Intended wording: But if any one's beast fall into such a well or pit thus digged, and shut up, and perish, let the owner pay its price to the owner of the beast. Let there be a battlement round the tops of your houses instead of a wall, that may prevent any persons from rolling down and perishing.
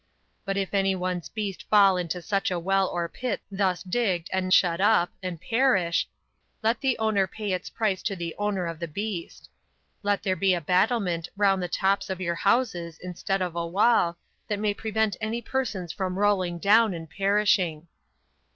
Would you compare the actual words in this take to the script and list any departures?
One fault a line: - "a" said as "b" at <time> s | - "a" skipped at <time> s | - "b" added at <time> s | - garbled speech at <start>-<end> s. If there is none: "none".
none